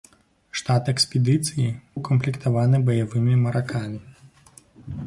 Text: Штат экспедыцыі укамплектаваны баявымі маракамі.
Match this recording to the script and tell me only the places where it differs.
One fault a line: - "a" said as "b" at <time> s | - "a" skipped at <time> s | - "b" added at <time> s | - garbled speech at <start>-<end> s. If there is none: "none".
none